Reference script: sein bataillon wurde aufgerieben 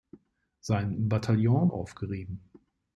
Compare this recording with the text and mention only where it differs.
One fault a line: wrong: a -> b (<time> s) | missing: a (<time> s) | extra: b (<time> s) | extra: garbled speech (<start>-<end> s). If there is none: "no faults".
missing: wurde (1.7 s)